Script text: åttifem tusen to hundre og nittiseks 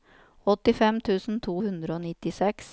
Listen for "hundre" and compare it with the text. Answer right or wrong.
right